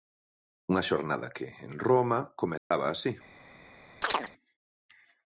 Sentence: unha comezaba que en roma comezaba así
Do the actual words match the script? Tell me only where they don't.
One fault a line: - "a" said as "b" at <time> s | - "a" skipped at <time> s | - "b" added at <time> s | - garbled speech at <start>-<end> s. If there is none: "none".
- "comezaba" said as "xornada" at 0.9 s